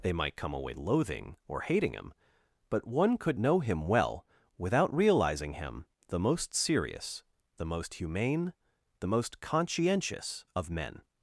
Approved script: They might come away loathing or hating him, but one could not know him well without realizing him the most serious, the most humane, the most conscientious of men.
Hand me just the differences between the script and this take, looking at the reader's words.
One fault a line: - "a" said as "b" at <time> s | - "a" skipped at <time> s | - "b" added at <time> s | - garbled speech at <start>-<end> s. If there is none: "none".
- "not" skipped at 3.4 s